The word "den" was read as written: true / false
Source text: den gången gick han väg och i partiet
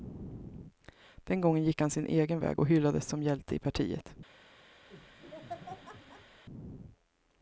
true